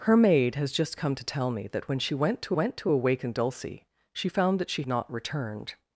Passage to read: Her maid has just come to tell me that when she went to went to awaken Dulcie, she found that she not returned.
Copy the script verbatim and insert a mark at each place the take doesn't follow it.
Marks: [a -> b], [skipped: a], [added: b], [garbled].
Her maid has just come to tell me that when she went to went to awaken Dulcie, she found that she not returned.